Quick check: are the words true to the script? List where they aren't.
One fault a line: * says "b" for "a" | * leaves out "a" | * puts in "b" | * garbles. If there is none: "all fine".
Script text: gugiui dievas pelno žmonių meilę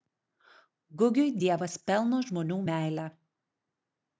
all fine